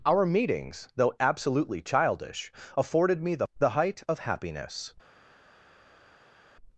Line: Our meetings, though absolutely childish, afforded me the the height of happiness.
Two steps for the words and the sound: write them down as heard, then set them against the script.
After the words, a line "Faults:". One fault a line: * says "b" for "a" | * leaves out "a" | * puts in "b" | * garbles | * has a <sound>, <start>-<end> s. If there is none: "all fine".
Our meetings, though absolutely childish, afforded me the the height of happiness.
Faults:
all fine